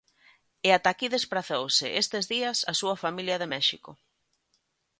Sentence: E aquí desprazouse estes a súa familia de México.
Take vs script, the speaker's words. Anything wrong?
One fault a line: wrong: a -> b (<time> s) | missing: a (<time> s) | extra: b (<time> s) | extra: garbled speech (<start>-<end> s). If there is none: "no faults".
extra: ata (0.8 s)
extra: días (2.3 s)